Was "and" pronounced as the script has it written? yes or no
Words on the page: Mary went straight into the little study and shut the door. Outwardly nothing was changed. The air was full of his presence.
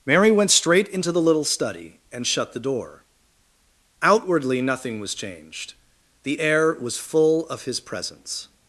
yes